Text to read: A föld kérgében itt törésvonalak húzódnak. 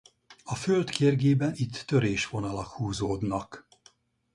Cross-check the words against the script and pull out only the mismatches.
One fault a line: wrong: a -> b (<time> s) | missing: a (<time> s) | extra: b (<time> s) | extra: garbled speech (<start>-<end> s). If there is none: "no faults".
no faults